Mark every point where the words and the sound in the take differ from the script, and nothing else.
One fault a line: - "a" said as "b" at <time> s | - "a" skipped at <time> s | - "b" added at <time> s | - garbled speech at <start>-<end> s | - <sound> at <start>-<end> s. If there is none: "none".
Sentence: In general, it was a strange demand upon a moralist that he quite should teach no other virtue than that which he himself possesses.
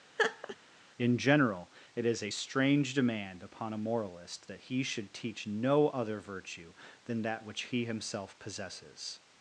- laugh at 0.2-0.6 s
- "was" said as "is" at 2.1 s
- "quite" skipped at 4.8 s